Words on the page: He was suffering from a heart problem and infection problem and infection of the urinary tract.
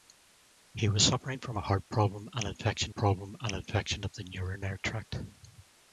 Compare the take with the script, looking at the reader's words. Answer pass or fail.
pass